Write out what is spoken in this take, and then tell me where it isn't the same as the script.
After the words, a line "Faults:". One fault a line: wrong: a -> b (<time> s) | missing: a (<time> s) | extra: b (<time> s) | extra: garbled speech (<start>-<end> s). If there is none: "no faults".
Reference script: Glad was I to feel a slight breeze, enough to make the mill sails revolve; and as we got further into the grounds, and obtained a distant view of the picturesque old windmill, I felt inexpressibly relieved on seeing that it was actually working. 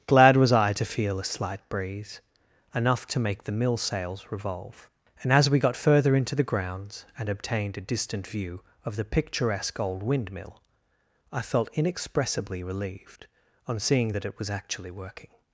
Glad was I to feel a slight breeze, enough to make the mill sails revolve; and as we got further into the grounds, and obtained a distant view of the picturesque old windmill, I felt inexpressibly relieved on seeing that it was actually working.
Faults:
no faults